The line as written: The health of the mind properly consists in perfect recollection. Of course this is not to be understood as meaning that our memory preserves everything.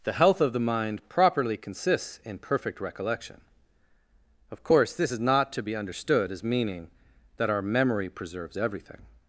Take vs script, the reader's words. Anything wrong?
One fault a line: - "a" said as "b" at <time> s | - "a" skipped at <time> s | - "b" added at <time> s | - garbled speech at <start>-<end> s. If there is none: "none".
none